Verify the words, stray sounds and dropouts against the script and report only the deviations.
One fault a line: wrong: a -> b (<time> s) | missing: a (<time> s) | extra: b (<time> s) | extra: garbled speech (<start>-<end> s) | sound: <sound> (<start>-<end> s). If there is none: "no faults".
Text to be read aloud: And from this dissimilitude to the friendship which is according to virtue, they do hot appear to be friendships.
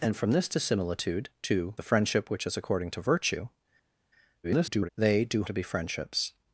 extra: garbled speech (4.4-4.9 s)
missing: hot appear (5.4 s)